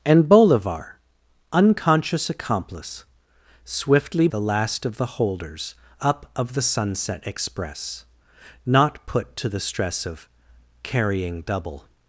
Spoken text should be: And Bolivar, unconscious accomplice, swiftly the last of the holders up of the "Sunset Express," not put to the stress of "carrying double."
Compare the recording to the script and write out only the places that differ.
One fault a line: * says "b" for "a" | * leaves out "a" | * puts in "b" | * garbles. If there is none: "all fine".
all fine